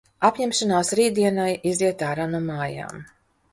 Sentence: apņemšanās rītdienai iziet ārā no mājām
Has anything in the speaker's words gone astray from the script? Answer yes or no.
no